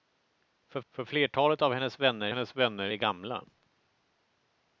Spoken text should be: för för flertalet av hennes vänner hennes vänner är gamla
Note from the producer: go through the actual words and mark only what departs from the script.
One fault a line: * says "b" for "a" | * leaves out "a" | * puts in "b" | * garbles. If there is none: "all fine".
all fine